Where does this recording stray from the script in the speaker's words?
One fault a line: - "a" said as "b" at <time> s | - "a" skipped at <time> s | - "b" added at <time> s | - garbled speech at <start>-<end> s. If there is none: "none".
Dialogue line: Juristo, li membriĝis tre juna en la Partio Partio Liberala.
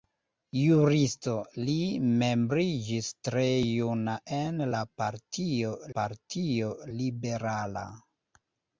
none